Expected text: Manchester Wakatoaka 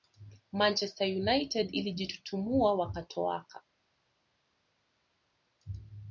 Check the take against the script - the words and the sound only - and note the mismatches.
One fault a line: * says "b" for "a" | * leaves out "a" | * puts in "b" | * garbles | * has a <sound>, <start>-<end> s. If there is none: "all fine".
* puts in "United ilijitutumua"